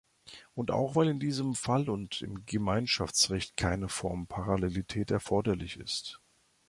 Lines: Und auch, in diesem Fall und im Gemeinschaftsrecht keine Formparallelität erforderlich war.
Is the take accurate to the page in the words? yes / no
no